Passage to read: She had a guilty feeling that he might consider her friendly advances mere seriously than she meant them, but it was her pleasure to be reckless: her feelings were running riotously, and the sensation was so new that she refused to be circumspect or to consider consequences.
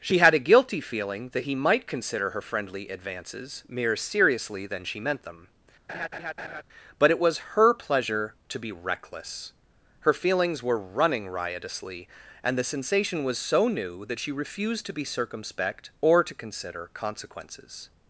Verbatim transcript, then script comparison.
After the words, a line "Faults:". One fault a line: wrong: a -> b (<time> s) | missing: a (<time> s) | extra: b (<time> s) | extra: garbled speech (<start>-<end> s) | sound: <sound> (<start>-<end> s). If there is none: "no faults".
She had a guilty feeling that he might consider her friendly advances mere seriously than she meant them, but it was her pleasure to be reckless: her feelings were running riotously, and the sensation was so new that she refused to be circumspect or to consider consequences.
Faults:
sound: laugh (5.9-6.6 s)